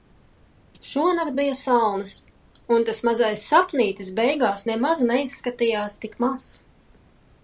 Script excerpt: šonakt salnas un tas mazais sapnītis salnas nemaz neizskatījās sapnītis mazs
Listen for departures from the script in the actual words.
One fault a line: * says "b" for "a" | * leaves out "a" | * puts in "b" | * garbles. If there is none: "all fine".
* puts in "bija"
* says "beigās" for "salnas"
* says "tik" for "sapnītis"